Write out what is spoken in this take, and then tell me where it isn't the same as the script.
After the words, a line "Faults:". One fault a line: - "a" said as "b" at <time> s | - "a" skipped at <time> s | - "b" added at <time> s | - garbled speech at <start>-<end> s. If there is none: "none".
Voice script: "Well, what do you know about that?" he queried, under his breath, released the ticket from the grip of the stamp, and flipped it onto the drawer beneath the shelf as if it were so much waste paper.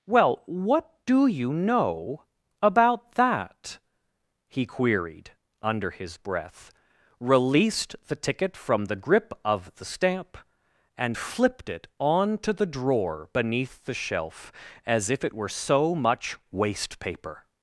"Well, what do you know about that?" he queried, under his breath, released the ticket from the grip of the stamp, and flipped it onto the drawer beneath the shelf as if it were so much waste paper.
Faults:
none